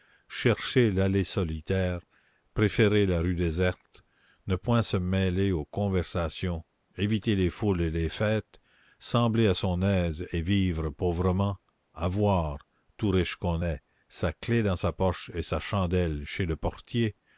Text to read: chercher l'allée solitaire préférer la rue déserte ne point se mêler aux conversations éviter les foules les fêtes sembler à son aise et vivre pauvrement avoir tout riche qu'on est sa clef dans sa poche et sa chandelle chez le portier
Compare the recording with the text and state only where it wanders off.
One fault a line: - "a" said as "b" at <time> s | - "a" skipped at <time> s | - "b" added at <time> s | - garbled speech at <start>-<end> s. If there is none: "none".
- "et" added at 7.8 s